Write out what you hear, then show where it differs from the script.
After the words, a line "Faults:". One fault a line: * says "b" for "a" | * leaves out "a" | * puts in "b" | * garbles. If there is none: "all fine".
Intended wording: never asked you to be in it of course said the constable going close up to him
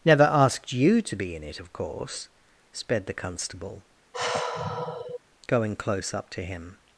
never asked you to be in it of course sped the constable going close up to him
Faults:
* says "sped" for "said"